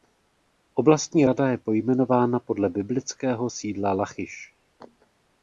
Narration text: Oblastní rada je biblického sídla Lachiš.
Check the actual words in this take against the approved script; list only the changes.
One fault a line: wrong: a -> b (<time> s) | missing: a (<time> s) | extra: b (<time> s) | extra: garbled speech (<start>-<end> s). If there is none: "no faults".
extra: pojmenována podle (1.6 s)